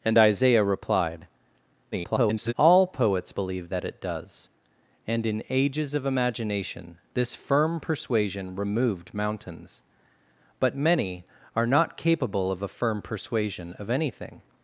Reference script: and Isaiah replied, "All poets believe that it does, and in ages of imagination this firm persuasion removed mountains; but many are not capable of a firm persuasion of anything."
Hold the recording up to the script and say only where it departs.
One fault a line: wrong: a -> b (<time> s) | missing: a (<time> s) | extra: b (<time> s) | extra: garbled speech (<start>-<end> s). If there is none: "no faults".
extra: garbled speech (1.9-2.5 s)